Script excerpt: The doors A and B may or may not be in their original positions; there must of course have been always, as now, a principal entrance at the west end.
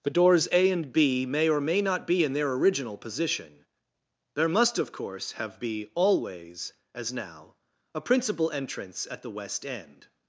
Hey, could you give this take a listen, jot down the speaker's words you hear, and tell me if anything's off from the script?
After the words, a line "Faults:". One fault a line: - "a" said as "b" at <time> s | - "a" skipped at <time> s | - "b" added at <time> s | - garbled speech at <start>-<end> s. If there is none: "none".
The doors A and B may or may not be in their original position; there must of course have be always, as now, a principal entrance at the west end.
Faults:
- "positions" said as "position" at 3.0 s
- "been" said as "be" at 5.6 s